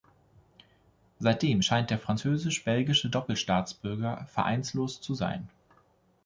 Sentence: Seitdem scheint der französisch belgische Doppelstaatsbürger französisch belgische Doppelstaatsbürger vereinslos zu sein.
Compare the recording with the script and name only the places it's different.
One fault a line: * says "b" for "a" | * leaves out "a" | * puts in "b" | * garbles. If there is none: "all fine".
* leaves out "französisch belgische Doppelstaatsbürger"